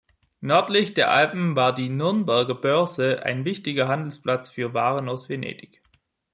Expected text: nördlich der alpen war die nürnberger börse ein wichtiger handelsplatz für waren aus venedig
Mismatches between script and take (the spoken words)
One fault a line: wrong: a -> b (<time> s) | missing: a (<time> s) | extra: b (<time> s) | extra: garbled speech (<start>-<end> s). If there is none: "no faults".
no faults